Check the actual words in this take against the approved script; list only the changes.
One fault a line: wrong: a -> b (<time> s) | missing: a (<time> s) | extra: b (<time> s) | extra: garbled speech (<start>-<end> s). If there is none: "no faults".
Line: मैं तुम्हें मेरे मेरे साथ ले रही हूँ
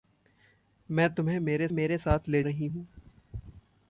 no faults